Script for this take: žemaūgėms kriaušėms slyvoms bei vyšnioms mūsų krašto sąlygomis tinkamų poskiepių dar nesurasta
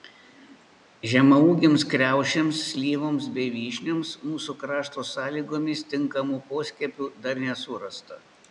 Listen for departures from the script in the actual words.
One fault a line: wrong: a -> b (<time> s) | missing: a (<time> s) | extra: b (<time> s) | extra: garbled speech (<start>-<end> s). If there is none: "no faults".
no faults